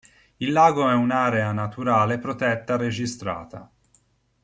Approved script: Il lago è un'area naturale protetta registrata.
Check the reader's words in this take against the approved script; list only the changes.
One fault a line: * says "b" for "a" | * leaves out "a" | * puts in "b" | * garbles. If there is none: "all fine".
all fine